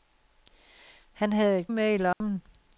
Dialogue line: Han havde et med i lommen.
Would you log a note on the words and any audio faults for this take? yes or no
yes